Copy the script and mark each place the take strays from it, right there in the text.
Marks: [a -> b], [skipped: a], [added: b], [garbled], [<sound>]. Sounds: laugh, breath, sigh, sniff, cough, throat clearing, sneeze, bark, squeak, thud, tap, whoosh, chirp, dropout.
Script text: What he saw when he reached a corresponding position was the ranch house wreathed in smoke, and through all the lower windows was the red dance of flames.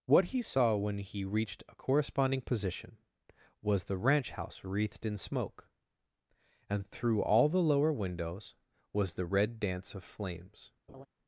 What he saw when he reached a corresponding position was the ranch house wreathed in smoke, and through all the lower windows was the red dance of flames. [laugh]